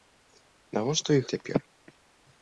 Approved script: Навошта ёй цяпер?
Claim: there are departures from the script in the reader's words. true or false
false